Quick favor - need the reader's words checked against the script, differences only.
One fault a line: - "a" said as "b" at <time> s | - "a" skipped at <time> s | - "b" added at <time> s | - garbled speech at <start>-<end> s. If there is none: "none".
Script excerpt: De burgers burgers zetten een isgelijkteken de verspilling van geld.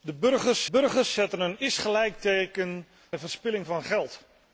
none